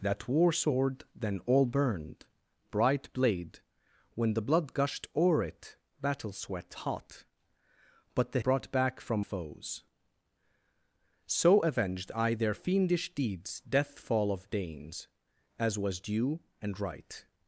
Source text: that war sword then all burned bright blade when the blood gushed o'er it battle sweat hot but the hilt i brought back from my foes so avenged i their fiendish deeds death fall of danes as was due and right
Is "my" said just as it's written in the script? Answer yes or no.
no